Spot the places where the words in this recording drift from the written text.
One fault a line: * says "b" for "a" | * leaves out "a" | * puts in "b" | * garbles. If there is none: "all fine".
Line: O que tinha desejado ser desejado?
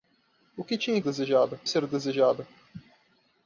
all fine